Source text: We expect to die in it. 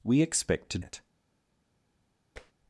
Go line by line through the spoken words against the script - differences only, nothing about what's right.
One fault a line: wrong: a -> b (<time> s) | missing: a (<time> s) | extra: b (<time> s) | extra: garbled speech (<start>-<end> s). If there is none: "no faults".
missing: die in (0.8 s)